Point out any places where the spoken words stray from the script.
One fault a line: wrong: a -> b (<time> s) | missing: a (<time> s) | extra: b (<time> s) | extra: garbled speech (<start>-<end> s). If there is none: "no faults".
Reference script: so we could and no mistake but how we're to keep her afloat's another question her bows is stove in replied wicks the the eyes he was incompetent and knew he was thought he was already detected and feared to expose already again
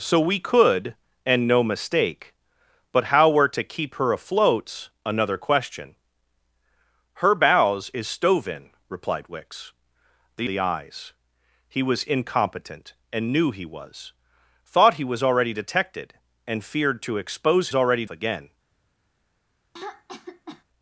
no faults